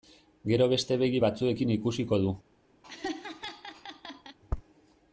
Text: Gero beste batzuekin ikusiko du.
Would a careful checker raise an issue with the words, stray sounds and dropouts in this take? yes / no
yes